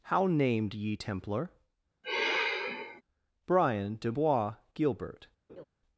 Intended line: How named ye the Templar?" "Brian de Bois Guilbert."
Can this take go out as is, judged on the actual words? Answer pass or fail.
fail